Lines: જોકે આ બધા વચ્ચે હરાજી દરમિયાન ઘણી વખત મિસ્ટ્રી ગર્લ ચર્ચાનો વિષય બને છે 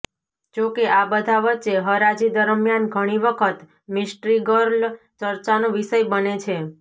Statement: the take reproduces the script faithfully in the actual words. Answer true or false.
true